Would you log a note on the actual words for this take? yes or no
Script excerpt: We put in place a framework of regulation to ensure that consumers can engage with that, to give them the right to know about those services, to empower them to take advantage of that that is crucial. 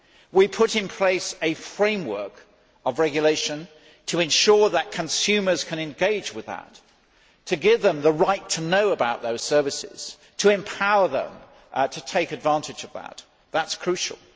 no